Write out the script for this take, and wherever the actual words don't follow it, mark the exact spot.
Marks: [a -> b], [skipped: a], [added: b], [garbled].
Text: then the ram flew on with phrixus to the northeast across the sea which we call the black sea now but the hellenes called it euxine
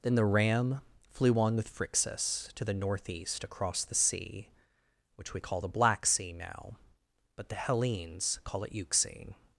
then the ram flew on with phrixus to the northeast across the sea which we call the black sea now but the hellenes [called -> call] it euxine